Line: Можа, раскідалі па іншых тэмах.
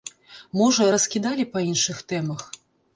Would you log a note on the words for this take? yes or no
no